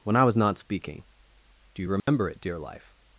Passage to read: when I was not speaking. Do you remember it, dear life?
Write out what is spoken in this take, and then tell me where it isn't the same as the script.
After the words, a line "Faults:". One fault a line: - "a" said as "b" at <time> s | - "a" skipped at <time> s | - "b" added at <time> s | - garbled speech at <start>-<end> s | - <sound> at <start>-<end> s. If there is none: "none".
when I was not speaking. Do you remember it, dear life?
Faults:
- dropout at 2.0-2.1 s